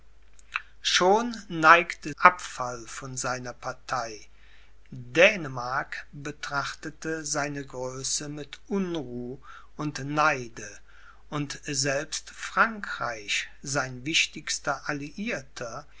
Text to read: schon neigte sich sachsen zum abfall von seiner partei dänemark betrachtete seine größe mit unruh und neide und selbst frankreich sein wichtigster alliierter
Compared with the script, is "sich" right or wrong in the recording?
wrong